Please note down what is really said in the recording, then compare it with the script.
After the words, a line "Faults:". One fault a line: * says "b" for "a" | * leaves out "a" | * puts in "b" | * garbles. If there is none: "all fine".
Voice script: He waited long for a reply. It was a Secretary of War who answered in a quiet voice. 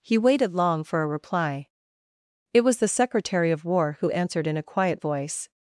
He waited long for a reply. It was the Secretary of War who answered in a quiet voice.
Faults:
* says "the" for "a"